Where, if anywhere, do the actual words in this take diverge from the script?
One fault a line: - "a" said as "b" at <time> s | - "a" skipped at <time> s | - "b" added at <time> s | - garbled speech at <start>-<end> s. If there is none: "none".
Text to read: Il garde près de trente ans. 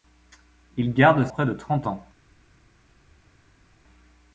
none